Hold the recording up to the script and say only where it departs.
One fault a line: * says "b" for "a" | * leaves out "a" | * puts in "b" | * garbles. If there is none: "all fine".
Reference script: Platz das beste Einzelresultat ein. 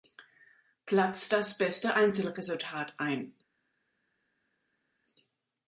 all fine